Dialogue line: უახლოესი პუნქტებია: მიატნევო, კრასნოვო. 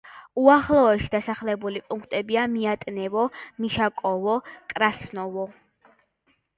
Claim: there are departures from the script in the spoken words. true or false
true